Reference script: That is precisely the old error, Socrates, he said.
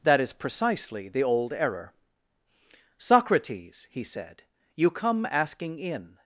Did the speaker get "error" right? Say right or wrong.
right